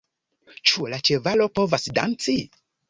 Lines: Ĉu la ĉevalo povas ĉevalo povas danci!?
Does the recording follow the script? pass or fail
fail